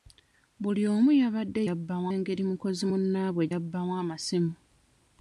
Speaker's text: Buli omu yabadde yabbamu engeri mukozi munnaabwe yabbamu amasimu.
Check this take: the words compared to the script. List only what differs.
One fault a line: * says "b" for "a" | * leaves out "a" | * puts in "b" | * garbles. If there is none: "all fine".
all fine